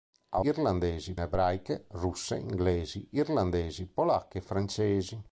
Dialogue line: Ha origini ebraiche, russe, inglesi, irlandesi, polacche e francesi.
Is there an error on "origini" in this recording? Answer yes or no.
yes